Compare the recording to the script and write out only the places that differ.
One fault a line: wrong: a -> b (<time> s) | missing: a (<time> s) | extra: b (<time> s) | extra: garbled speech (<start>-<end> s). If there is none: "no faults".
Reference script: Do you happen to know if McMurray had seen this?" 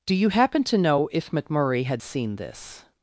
no faults